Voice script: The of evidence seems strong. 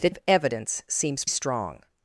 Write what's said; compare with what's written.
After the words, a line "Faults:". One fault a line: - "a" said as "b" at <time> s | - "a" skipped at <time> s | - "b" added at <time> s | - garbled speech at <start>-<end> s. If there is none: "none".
The of evidence seems strong.
Faults:
none